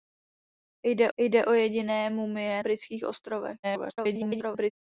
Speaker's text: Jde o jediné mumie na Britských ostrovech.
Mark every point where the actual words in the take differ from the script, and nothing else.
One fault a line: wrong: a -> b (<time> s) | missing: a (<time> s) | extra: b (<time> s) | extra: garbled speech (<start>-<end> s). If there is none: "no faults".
extra: jde (1.2 s)
missing: na (2.6 s)
extra: garbled speech (3.6-4.7 s)